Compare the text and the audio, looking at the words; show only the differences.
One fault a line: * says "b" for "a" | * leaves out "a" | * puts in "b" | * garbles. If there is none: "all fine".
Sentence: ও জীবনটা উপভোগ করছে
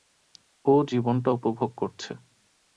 all fine